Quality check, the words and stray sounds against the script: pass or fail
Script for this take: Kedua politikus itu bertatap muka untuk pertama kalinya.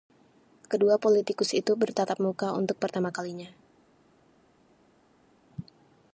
pass